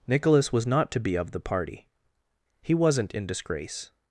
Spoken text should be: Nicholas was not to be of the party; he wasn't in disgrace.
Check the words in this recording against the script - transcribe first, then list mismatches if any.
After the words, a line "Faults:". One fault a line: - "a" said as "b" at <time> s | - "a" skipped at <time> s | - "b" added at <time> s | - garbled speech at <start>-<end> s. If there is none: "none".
Nicholas was not to be of the party; he wasn't in disgrace.
Faults:
none